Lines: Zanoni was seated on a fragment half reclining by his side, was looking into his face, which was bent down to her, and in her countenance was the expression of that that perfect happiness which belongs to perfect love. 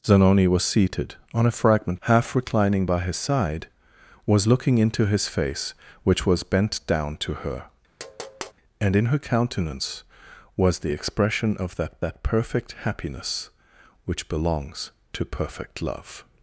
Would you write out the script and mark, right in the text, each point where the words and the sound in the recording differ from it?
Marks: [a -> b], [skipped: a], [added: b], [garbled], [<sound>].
Zanoni was seated on a fragment half reclining by his side, was looking into his face, which was bent down to her, [tap] and in her countenance was the expression of that that perfect happiness which belongs to perfect love.